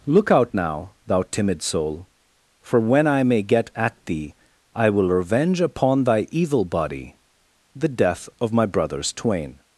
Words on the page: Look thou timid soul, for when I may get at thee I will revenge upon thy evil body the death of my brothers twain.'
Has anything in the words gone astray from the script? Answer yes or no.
yes